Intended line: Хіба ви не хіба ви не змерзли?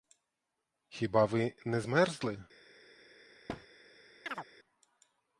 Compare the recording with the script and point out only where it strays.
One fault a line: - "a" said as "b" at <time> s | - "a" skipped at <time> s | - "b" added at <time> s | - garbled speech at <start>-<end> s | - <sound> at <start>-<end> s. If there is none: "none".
- "хіба ви не" skipped at 1.8 s
- thud at 3.5-3.7 s
- chirp at 4.3-4.5 s